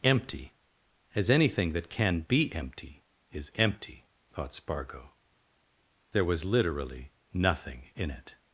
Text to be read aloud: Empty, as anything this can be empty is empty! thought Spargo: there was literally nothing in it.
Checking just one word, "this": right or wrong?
wrong